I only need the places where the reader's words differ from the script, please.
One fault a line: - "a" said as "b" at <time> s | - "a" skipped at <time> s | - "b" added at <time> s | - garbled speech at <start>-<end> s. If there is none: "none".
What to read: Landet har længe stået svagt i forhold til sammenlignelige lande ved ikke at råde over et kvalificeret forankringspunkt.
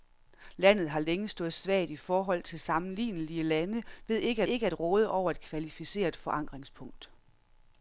- "ikke" added at 4.4 s